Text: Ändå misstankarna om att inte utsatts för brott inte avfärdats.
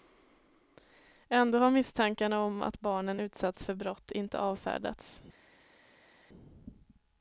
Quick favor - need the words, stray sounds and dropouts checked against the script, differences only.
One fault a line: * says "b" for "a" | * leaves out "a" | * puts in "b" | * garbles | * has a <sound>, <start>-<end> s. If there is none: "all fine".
* puts in "har"
* says "barnen" for "inte"